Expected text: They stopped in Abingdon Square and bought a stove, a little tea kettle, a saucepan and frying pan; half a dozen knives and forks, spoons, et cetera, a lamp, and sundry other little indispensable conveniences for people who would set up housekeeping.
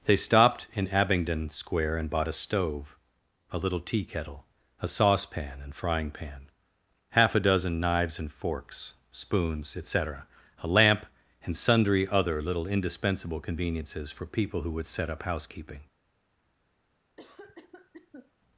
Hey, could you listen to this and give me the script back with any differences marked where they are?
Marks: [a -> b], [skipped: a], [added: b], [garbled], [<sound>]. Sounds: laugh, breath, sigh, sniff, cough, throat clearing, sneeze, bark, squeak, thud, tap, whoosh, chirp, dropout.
They stopped in Abingdon Square and bought a stove, a little tea kettle, a saucepan and frying pan; half a dozen knives and forks, spoons, et cetera, a lamp, and sundry other little indispensable conveniences for people who would set up housekeeping. [cough]